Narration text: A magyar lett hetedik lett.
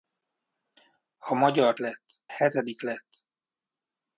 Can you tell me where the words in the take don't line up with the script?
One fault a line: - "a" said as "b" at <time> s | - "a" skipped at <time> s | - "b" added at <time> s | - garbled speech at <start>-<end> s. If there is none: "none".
none